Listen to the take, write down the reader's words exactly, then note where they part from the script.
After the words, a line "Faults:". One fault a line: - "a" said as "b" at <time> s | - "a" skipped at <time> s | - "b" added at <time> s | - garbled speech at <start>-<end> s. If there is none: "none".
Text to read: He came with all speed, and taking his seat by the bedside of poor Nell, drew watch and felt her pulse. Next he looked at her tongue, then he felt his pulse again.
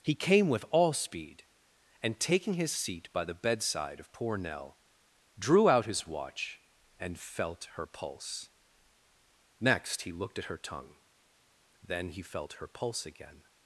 He came with all speed, and taking his seat by the bedside of poor Nell, drew out his watch and felt her pulse. Next he looked at her tongue, then he felt her pulse again.
Faults:
- "out his" added at 5.7 s
- "his" said as "her" at 12.5 s